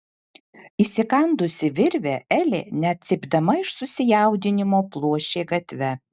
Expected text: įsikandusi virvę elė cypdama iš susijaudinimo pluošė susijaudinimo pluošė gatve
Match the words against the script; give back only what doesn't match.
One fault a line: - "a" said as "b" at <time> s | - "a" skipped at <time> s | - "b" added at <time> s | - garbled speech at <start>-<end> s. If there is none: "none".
- "net" added at 2.9 s
- "susijaudinimo pluošė" skipped at 5.5 s